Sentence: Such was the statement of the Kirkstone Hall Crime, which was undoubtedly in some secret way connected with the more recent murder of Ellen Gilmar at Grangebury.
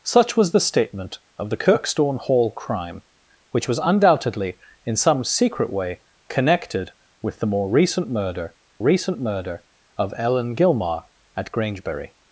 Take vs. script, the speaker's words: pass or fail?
fail